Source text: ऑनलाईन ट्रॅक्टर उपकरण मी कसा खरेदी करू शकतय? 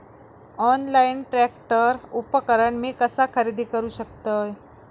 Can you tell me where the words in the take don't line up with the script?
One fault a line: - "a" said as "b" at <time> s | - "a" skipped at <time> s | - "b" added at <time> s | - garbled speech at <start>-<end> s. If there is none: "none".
none